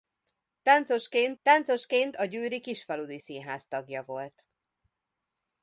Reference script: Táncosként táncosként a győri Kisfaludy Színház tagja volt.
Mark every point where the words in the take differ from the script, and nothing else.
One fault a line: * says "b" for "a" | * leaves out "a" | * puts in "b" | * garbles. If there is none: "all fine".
all fine